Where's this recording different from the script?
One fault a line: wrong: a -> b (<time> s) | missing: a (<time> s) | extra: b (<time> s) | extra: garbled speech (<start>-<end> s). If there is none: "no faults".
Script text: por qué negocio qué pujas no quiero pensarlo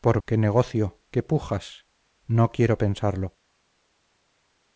no faults